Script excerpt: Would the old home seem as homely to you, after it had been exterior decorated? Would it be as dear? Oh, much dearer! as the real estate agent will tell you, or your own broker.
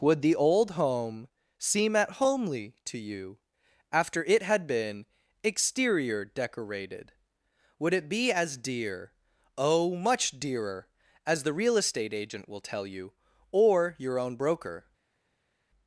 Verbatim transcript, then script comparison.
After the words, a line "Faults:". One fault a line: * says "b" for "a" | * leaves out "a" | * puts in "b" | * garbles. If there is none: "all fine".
Would the old home seem at homely to you, after it had been exterior decorated? Would it be as dear? Oh, much dearer! as the real estate agent will tell you, or your own broker.
Faults:
* says "at" for "as"